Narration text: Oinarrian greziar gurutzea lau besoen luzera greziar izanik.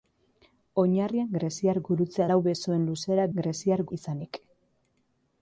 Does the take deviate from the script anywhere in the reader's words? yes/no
no